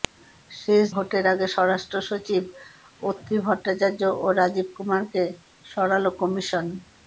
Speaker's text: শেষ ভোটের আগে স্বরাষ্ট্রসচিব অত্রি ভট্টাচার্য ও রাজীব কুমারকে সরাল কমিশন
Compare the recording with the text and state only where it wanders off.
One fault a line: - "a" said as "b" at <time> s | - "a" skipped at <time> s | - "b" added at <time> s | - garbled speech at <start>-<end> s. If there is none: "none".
none